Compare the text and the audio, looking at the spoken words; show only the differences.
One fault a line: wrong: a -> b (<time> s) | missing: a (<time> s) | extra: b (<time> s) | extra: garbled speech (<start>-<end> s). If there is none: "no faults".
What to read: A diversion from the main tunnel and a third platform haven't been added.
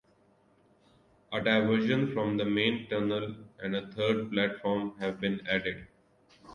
wrong: haven't -> have (5.0 s)